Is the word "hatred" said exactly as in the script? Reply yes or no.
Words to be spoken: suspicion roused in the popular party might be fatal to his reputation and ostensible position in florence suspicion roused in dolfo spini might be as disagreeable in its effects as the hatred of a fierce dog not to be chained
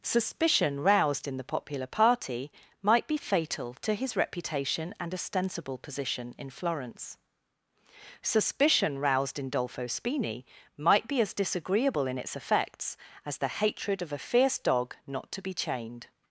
yes